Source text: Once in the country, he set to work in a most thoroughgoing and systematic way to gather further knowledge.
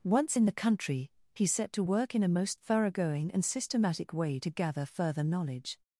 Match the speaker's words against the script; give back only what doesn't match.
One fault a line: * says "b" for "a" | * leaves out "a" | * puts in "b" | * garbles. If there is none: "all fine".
all fine